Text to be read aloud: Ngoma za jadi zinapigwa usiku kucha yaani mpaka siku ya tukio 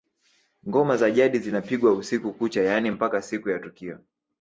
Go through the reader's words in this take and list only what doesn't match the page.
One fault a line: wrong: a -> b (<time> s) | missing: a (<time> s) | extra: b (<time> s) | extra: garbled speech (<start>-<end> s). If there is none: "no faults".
no faults